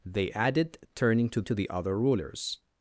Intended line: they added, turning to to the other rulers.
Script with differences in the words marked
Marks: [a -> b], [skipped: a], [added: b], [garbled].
they added, turning to to the other rulers.